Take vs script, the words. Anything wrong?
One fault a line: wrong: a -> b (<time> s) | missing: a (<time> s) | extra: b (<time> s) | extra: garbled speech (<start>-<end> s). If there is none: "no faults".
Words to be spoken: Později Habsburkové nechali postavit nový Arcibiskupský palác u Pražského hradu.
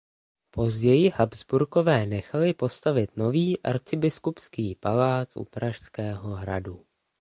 no faults